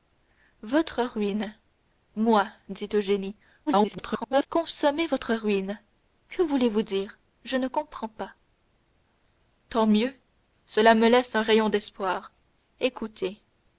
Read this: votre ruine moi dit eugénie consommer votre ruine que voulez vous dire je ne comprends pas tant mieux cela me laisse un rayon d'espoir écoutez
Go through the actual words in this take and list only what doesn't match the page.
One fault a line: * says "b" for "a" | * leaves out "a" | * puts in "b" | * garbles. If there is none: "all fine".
* garbles